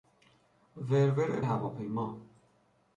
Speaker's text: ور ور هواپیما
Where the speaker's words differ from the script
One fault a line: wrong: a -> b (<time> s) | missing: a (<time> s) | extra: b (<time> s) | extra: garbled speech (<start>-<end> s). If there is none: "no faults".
no faults